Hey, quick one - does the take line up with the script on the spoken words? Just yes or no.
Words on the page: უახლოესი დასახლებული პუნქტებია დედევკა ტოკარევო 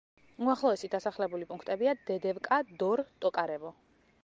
no